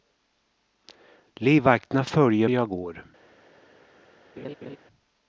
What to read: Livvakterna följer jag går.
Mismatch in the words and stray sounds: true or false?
true